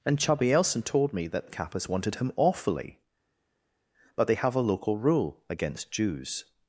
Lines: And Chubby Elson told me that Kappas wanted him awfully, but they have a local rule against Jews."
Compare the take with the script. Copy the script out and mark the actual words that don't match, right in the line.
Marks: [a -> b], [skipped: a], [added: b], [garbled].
And Chubby Elson told me that Kappas wanted him awfully, but they have a local rule against Jews."